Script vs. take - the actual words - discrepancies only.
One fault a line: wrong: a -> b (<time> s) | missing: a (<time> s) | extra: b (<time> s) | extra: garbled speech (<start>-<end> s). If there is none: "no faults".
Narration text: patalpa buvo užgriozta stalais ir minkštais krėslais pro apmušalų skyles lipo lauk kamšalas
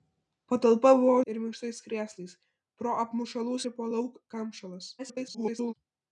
missing: užgriozta stalais (1.2 s)
missing: skyles (3.6 s)
extra: garbled speech (5.0-5.7 s)